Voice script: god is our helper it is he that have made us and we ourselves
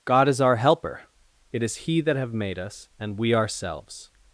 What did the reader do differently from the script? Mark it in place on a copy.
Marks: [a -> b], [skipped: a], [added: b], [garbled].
god is our helper it is he that have made us and we ourselves